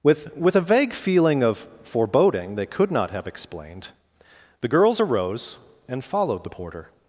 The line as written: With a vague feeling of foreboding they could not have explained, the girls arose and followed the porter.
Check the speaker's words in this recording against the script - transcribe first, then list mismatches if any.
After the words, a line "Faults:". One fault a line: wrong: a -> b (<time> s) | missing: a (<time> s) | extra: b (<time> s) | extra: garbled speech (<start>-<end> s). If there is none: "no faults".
With with a vague feeling of foreboding they could not have explained, the girls arose and followed the porter.
Faults:
extra: with (0.3 s)